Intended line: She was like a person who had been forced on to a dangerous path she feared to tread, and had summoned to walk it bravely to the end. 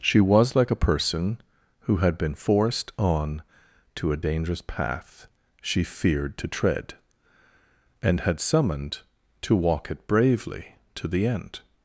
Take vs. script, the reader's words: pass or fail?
pass